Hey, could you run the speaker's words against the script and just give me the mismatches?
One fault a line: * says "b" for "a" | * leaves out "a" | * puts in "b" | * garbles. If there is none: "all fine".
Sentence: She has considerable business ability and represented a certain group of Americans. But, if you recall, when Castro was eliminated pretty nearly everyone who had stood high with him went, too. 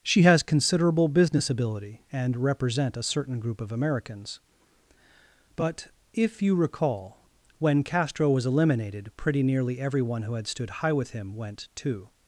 * says "represent" for "represented"